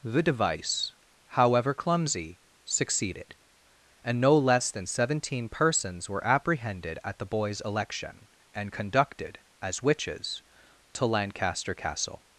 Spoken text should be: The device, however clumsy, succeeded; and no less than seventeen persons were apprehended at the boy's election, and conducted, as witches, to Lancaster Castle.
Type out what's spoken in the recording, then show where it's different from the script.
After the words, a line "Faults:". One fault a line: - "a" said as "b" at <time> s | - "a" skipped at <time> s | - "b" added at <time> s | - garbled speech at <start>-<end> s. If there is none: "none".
The device, however clumsy, succeeded; and no less than seventeen persons were apprehended at the boy's election, and conducted, as witches, to Lancaster Castle.
Faults:
none